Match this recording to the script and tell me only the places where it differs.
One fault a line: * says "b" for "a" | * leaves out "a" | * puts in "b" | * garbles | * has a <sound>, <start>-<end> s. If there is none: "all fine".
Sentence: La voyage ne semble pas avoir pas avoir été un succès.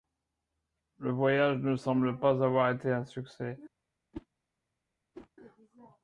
* says "Le" for "La"
* leaves out "pas avoir"
* has a whoosh, 4.1-4.3 s
* has a whoosh, 5.1-5.3 s